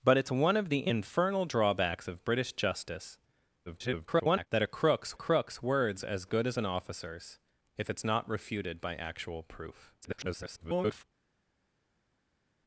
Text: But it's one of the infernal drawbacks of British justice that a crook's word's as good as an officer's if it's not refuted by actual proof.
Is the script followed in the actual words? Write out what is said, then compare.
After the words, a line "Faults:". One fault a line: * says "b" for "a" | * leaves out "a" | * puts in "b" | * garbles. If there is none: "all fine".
But it's one of the infernal drawbacks of British justice [garbled] that a crook's crook's word's as good as an officer's if it's not refuted by actual proof. [garbled]
Faults:
* garbles
* puts in "crook's"
* garbles